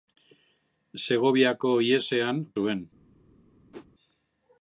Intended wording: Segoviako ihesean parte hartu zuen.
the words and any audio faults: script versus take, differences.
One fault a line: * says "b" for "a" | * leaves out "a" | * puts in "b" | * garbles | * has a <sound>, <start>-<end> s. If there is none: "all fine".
* leaves out "parte hartu"
* has a whoosh, 3.7-3.9 s